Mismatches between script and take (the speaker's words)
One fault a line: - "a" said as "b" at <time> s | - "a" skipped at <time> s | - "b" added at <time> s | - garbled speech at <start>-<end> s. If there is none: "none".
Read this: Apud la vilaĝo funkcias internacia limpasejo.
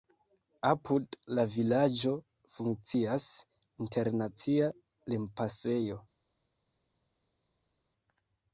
none